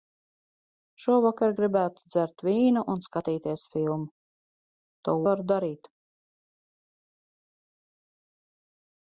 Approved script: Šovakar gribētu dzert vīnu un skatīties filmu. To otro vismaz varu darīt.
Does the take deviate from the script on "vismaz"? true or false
true